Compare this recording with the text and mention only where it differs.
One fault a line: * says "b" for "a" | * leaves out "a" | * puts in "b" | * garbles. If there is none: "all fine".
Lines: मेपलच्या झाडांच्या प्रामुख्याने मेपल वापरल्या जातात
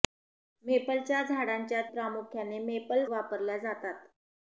all fine